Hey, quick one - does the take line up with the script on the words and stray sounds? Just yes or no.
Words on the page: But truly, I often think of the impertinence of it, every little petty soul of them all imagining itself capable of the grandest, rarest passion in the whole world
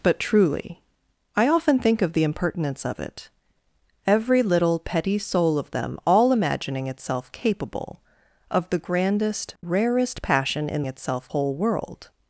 no